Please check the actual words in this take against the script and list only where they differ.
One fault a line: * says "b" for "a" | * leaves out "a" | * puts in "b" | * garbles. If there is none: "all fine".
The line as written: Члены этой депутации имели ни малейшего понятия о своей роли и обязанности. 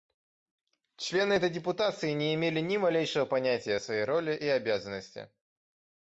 * puts in "не"